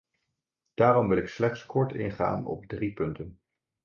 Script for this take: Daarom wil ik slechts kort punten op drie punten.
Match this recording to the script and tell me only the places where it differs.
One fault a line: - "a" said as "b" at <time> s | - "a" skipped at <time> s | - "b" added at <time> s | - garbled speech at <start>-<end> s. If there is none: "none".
- "punten" said as "ingaan" at 1.9 s